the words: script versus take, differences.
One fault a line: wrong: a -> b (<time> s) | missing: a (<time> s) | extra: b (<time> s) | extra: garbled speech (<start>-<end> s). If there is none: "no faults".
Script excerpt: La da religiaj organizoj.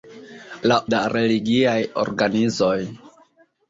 no faults